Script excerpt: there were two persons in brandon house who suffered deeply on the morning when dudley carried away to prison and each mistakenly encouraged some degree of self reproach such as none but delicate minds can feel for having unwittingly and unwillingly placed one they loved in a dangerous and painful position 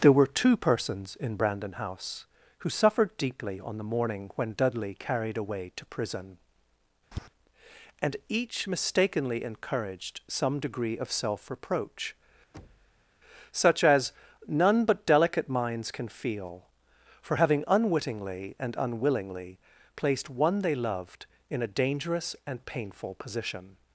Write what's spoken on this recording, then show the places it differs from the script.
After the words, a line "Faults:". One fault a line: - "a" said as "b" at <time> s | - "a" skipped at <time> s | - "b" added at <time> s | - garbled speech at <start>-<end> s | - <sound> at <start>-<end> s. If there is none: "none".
there were two persons in brandon house who suffered deeply on the morning when dudley carried away to prison and each mistakenly encouraged some degree of self reproach such as none but delicate minds can feel for having unwittingly and unwillingly placed one they loved in a dangerous and painful position
Faults:
- tap at 7.1-7.3 s
- thud at 12.5-13.1 s